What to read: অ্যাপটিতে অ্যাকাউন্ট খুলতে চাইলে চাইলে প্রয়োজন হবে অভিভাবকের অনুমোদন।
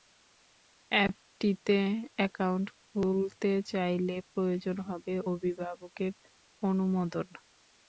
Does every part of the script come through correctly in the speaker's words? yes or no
no